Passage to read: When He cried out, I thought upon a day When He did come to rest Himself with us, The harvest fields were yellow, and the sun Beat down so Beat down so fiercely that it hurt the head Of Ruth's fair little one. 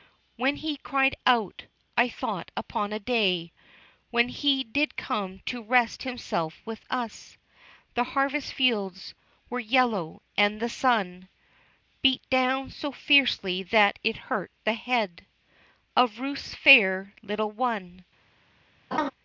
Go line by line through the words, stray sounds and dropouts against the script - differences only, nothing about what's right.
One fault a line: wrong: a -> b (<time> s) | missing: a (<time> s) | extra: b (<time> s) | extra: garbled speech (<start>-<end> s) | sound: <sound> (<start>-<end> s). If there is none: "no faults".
missing: Beat down so (12.9 s)
sound: laugh (18.9-19.1 s)